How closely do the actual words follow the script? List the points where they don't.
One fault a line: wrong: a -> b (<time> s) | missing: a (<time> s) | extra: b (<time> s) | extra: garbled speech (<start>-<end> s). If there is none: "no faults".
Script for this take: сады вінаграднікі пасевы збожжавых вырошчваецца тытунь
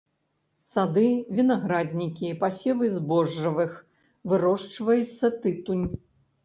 no faults